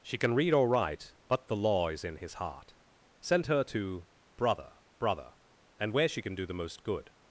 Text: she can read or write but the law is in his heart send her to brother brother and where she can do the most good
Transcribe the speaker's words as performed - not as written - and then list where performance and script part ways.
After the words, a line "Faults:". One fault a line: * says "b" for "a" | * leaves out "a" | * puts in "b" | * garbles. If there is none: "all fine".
she can read or write but the law is in his heart send her to brother brother and where she can do the most good
Faults:
all fine